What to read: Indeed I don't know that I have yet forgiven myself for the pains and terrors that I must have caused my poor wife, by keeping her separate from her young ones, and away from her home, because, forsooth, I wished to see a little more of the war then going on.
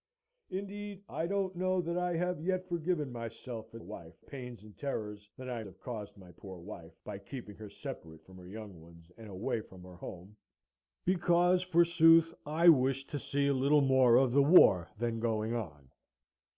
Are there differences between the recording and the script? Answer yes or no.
yes